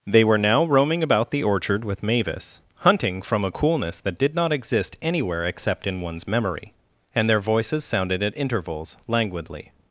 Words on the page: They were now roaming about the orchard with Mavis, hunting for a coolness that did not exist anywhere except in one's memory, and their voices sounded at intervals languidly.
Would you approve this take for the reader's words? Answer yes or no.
no